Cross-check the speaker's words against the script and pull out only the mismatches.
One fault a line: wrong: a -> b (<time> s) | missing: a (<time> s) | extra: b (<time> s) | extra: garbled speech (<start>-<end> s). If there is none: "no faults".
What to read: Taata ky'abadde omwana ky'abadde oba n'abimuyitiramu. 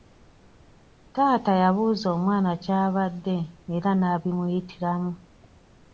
wrong: ky'abadde -> yabuuza (1.6 s)
wrong: oba -> era (3.8 s)